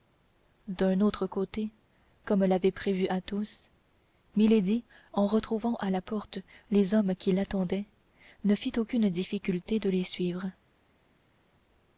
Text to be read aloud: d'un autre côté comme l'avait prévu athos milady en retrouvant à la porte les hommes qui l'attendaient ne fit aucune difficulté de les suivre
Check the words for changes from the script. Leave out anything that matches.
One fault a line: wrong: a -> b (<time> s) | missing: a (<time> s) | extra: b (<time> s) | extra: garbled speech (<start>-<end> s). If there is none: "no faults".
no faults